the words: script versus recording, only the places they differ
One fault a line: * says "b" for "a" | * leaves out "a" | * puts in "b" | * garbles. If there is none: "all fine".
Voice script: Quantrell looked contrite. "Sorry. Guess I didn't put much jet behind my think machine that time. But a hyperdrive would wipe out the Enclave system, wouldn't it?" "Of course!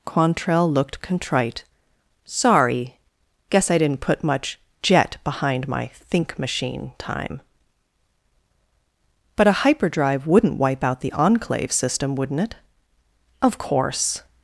* leaves out "that"
* says "wouldn't" for "would"